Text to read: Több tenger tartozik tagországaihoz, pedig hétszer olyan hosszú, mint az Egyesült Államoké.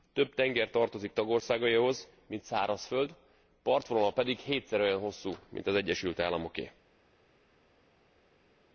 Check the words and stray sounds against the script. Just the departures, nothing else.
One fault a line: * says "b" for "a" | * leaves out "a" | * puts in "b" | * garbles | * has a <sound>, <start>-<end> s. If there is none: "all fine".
* puts in "mint szárazföld partvonala"